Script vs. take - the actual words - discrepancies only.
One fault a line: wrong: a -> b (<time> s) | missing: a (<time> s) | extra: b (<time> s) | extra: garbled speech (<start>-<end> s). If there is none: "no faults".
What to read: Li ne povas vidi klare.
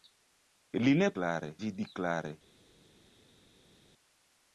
wrong: povas -> klare (1.2 s)